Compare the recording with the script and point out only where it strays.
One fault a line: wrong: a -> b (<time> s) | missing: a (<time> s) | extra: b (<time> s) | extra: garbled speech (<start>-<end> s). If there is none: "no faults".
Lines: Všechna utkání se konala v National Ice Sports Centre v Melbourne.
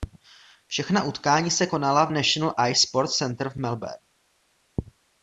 no faults